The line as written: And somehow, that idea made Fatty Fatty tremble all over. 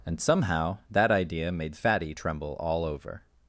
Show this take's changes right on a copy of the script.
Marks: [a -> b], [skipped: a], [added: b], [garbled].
And somehow, that idea made Fatty [skipped: Fatty] tremble all over.